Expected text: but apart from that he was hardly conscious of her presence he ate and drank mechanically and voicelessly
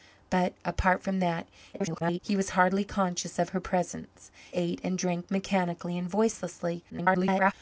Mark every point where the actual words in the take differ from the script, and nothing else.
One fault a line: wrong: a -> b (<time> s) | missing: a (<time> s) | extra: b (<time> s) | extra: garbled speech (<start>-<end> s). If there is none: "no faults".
extra: garbled speech (1.7-2.2 s)
missing: he (4.3 s)
extra: garbled speech (6.9-7.5 s)